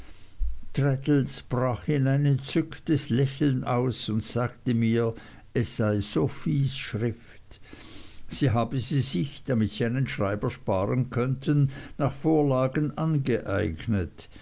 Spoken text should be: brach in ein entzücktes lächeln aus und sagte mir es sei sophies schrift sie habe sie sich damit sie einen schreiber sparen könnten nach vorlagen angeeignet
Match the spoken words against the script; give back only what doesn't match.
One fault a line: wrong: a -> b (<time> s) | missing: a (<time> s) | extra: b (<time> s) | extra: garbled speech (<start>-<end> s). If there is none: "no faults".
no faults